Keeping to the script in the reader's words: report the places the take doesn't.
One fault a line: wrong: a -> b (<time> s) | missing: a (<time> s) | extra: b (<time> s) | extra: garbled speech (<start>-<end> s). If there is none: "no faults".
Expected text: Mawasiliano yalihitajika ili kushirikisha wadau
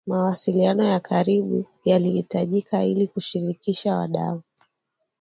extra: ya karibu (0.8 s)